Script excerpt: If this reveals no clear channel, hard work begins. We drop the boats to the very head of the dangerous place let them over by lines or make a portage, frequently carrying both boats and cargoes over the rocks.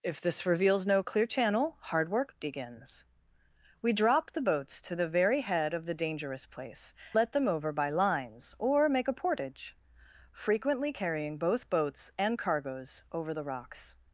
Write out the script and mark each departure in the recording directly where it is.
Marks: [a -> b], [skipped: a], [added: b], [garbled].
If this reveals no clear channel, hard work begins. We drop the boats to the very head of the dangerous place let them over by lines or make a portage, frequently carrying both boats and cargoes over the rocks.